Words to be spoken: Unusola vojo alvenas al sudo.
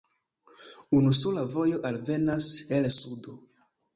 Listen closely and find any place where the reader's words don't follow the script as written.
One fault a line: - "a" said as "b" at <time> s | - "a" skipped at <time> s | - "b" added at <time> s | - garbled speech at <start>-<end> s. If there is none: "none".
- "al" said as "el" at 2.8 s